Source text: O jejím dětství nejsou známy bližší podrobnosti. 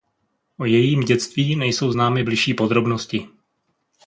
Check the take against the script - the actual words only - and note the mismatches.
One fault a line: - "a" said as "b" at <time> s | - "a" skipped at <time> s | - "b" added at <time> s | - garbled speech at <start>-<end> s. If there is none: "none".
none